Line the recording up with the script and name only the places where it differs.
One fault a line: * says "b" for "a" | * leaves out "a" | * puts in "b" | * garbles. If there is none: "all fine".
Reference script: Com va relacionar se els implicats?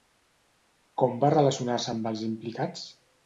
* puts in "amb"